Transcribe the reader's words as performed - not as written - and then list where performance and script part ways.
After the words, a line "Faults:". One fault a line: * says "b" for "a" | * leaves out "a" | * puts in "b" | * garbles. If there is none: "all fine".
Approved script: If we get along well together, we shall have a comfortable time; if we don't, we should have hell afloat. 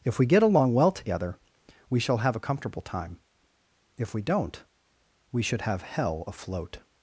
If we get along well together, we shall have a comfortable time; if we don't, we should have hell afloat.
Faults:
all fine